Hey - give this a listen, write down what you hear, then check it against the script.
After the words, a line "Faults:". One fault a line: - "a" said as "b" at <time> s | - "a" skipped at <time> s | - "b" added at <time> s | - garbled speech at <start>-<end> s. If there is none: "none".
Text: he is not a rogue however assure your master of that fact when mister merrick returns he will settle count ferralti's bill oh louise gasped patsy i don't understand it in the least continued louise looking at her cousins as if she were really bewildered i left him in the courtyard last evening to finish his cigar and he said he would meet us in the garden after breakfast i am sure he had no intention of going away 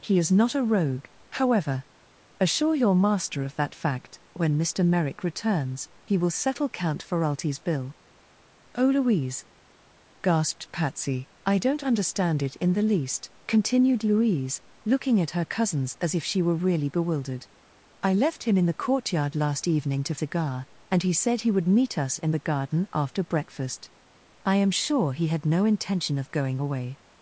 he is not a rogue however assure your master of that fact when mister merrick returns he will settle count ferralti's bill oh louise gasped patsy i don't understand it in the least continued louise looking at her cousins as if she were really bewildered i left him in the courtyard last evening to cigar and he said he would meet us in the garden after breakfast i am sure he had no intention of going away
Faults:
- "finish his" skipped at 20.2 s